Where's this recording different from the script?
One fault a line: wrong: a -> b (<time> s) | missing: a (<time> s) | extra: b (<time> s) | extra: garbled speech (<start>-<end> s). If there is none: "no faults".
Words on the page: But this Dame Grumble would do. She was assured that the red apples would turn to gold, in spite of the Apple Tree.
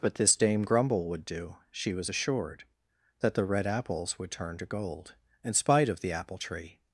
no faults